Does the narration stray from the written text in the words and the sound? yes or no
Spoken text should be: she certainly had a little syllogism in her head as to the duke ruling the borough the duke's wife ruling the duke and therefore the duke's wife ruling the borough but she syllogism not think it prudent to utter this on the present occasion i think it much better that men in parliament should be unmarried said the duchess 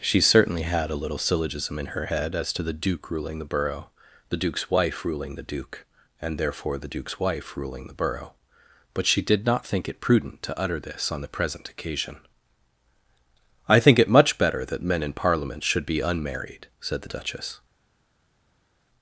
yes